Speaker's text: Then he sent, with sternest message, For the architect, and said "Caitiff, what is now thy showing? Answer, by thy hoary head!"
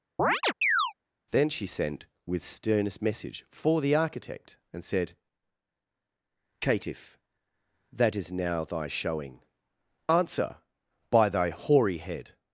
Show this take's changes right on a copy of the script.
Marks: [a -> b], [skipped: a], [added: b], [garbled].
Then [he -> she] sent, with sternest message, For the architect, and said "Caitiff, [what -> that] is now thy showing? Answer, by thy hoary head!"